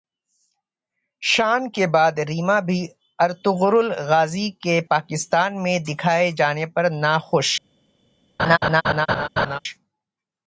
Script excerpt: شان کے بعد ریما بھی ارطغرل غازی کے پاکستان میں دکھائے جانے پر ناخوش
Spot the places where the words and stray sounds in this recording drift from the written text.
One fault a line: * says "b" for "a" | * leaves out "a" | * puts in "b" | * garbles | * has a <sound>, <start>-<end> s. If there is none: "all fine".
* has a laugh, 8.4-9.6 s